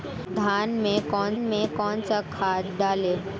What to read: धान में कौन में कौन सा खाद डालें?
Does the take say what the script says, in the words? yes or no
yes